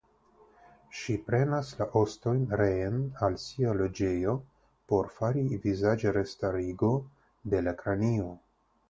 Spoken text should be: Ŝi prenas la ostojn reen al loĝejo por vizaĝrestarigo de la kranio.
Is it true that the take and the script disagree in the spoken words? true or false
true